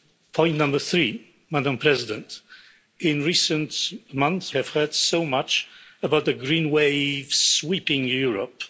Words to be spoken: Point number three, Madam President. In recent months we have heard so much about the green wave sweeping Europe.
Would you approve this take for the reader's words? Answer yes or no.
no